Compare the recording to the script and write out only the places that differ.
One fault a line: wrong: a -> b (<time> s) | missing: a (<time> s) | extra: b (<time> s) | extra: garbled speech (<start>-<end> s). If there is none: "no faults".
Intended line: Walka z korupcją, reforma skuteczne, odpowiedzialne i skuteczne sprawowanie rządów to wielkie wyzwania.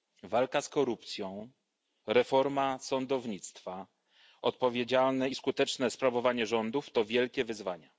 wrong: skuteczne -> sądownictwa (2.8 s)